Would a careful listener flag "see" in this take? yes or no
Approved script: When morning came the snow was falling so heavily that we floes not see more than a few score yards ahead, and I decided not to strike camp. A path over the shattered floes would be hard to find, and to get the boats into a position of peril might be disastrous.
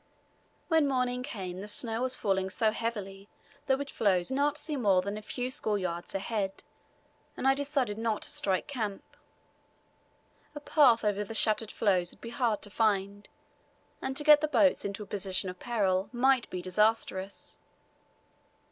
no